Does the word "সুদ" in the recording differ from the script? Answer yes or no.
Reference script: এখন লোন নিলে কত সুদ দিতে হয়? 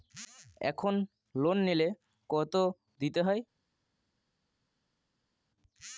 yes